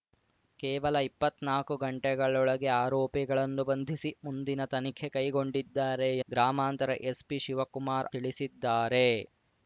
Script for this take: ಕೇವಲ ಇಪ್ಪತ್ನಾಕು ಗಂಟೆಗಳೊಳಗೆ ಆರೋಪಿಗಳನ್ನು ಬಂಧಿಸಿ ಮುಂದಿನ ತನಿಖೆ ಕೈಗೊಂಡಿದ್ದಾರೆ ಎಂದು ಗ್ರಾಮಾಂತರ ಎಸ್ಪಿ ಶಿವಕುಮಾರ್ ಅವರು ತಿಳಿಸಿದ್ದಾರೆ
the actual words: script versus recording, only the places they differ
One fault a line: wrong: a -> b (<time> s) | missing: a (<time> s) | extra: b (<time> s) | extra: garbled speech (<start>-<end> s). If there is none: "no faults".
missing: ಎಂದು (6.1 s)
missing: ಅವರು (8.1 s)